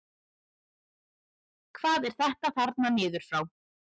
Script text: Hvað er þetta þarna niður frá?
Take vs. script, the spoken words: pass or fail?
pass